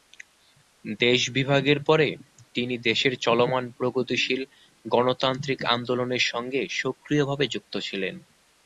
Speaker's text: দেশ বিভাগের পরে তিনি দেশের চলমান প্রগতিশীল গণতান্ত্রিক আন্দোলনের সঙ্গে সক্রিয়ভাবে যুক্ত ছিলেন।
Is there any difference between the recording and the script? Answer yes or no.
no